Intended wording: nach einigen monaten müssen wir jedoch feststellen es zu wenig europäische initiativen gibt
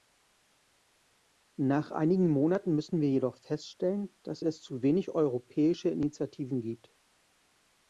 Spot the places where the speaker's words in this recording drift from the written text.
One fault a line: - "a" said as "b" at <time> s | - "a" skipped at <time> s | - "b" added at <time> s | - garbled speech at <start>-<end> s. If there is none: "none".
- "dass" added at 4.2 s